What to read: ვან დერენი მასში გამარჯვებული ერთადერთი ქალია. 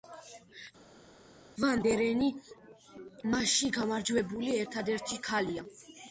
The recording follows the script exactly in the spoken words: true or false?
true